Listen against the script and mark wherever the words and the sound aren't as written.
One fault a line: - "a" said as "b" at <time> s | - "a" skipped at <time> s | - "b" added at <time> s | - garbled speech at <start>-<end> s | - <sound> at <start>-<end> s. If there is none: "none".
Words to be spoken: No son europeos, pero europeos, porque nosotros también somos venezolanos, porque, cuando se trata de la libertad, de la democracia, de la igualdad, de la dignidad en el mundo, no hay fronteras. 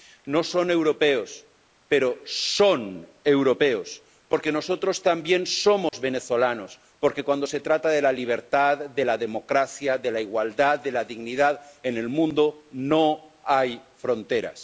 - "son" added at 2.2 s
- dropout at 5.9-5.9 s